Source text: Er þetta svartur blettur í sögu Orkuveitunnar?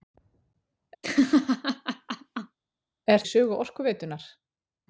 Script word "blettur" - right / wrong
wrong